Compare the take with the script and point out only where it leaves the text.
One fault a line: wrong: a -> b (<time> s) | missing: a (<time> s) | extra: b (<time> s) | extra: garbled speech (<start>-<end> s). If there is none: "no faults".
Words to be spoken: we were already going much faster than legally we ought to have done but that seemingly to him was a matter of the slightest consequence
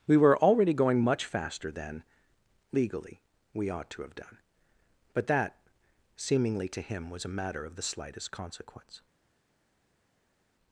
no faults